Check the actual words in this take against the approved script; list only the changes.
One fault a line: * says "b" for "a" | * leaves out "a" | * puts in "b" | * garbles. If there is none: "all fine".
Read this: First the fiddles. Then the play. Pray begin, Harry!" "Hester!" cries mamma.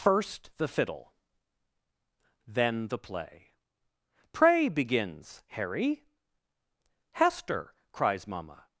* says "fiddle" for "fiddles"
* says "begins" for "begin"